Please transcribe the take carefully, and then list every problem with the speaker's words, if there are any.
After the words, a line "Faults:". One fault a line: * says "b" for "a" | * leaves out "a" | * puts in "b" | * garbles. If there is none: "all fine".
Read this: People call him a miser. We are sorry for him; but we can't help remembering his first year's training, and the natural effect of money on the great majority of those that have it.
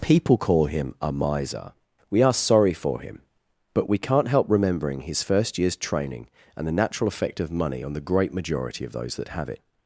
People call him a miser. We are sorry for him; but we can't help remembering his first year's training, and the natural effect of money on the great majority of those that have it.
Faults:
all fine